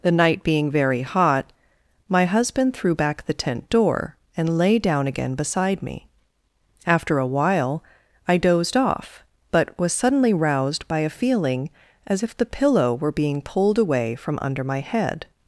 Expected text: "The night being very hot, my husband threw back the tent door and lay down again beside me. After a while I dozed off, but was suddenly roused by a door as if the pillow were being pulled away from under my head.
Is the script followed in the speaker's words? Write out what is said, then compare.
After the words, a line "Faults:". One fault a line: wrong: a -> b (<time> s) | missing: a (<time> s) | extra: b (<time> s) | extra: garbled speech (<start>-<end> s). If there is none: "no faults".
"The night being very hot, my husband threw back the tent door and lay down again beside me. After a while I dozed off, but was suddenly roused by a feeling as if the pillow were being pulled away from under my head.
Faults:
wrong: door -> feeling (11.1 s)